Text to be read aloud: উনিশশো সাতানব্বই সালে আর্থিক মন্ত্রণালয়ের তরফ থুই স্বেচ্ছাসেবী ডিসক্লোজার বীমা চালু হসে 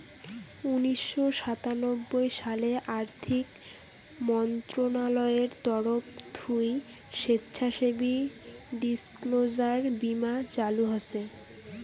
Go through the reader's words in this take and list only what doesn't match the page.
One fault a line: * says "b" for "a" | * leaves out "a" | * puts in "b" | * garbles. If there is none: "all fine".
all fine